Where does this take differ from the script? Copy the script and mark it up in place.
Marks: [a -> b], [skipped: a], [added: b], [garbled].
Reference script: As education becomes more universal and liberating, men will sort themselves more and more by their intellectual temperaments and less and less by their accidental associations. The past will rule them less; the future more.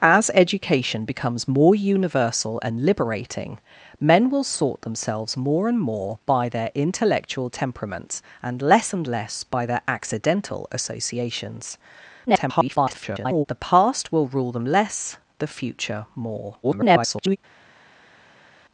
As education becomes more universal and liberating, men will sort themselves more and more by their intellectual temperaments and less and less by their accidental associations. [garbled] The past will rule them less; the future more. [garbled]